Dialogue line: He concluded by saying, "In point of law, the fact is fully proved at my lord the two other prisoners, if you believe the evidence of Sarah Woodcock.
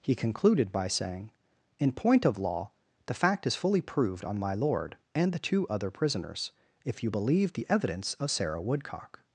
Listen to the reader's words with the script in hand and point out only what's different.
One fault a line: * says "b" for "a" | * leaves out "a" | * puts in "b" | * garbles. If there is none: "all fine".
* says "on" for "at"
* puts in "and"